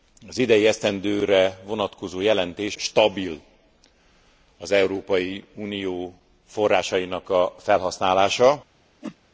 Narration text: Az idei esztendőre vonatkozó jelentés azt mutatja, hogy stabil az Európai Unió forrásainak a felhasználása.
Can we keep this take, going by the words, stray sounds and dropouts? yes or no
no